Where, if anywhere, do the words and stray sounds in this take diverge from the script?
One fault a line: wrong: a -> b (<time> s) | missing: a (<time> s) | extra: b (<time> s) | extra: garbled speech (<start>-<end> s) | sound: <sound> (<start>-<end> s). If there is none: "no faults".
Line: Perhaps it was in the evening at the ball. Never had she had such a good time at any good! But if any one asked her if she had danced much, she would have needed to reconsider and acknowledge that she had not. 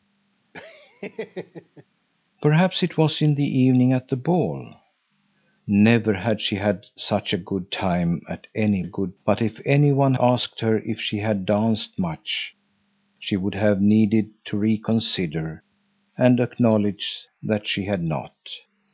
sound: laugh (0.5-1.8 s)